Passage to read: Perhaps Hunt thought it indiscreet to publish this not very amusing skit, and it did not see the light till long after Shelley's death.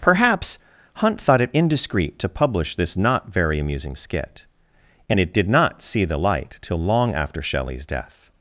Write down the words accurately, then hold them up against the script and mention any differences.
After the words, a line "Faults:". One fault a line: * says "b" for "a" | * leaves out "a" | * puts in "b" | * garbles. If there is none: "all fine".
Perhaps Hunt thought it indiscreet to publish this not very amusing skit, and it did not see the light till long after Shelley's death.
Faults:
all fine